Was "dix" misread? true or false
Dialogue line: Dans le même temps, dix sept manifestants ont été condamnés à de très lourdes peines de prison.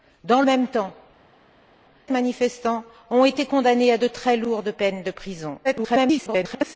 true